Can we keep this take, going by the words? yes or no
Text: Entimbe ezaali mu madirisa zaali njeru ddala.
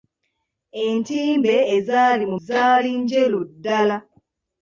no